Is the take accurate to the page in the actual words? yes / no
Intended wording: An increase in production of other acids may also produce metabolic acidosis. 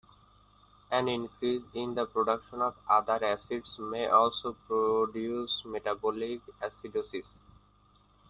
no